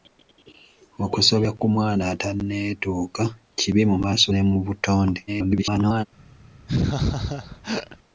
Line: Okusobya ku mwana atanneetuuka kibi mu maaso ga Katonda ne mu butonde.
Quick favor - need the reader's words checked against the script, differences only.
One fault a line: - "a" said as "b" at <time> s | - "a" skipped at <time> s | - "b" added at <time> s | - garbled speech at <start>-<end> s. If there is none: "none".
- "ga Katonda" skipped at 4.3 s
- garbled speech at 5.3-6.1 s